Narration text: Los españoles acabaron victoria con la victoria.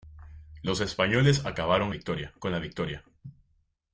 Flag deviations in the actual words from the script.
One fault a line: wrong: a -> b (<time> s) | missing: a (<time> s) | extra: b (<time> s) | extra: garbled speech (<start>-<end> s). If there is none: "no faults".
no faults